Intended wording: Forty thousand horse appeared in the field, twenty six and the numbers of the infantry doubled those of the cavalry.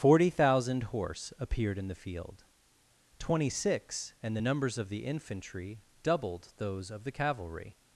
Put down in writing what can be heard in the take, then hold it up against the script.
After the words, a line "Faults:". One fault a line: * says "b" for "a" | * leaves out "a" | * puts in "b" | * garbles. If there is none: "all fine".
Forty thousand horse appeared in the field, twenty six and the numbers of the infantry doubled those of the cavalry.
Faults:
all fine